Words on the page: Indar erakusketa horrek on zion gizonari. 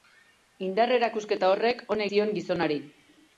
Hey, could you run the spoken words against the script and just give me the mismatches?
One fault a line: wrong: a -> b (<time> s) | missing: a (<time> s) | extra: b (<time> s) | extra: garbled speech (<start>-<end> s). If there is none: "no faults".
no faults